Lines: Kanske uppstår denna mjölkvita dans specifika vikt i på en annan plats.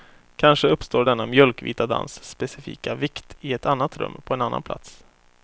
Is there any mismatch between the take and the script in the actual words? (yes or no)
yes